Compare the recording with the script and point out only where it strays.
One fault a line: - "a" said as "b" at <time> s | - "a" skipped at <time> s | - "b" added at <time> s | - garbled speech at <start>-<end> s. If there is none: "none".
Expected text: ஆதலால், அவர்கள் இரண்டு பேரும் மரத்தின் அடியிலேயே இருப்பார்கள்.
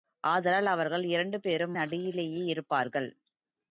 - "மரத்தின்" skipped at 1.8 s